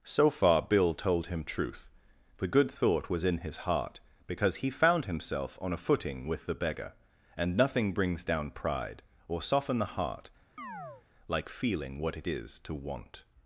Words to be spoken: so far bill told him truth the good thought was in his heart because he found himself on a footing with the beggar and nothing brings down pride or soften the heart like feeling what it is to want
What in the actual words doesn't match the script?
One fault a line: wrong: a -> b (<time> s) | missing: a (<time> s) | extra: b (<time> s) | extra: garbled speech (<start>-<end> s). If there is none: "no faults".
no faults